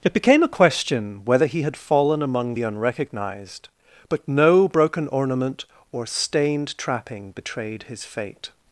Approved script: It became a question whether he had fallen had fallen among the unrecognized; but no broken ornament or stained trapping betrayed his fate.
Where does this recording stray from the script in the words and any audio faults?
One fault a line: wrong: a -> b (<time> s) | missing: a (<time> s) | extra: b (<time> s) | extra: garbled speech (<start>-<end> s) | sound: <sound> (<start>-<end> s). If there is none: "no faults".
missing: had fallen (2.2 s)